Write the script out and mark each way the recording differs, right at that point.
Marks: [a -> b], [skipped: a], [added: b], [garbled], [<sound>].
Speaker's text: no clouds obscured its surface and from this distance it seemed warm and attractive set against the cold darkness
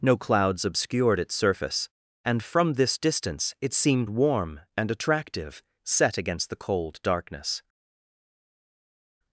no clouds obscured its surface and from this distance it seemed warm and attractive set against the cold darkness